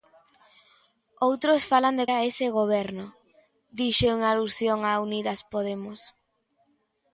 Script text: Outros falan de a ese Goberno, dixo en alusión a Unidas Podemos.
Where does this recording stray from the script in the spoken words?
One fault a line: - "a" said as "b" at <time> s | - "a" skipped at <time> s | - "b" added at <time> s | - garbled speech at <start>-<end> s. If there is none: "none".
none